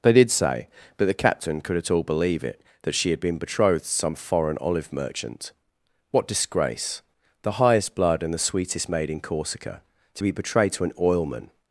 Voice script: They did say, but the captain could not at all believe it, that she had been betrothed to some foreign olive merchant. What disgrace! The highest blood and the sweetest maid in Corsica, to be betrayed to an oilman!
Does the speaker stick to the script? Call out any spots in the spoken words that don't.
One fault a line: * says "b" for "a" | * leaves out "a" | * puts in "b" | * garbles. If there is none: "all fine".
* leaves out "not"